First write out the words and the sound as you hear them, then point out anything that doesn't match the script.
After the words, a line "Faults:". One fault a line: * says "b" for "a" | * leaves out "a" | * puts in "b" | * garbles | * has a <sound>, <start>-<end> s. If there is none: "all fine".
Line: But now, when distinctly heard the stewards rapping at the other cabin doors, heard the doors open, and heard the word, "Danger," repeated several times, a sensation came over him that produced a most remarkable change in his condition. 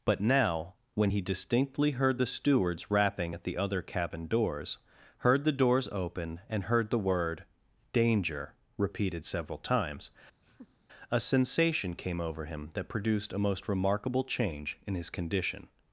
But now, when he distinctly heard the stewards rapping at the other cabin doors, heard the doors open, and heard the word, "Danger," repeated several times, a sensation came over him that produced a most remarkable change in his condition.
Faults:
* puts in "he"
* has a laugh, 10.4-10.9 s